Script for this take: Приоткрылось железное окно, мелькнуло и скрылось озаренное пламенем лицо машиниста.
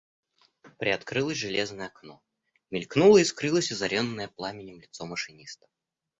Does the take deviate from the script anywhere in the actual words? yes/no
no